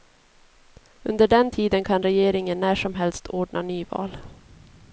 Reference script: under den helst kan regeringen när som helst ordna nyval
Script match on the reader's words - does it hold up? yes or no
no